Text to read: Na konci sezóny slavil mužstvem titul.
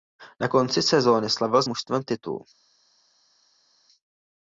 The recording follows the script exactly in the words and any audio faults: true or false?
true